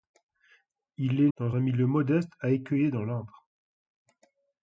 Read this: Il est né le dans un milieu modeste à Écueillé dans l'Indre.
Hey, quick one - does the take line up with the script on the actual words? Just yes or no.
no